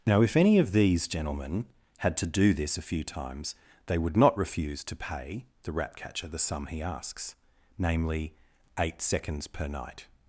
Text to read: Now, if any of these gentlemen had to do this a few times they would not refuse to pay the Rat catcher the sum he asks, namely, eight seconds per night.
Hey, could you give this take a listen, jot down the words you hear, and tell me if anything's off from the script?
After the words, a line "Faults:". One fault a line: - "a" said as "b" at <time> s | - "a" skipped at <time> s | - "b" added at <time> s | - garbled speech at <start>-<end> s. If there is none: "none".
Now, if any of these gentlemen had to do this a few times they would not refuse to pay the Rat catcher the sum he asks, namely, eight seconds per night.
Faults:
none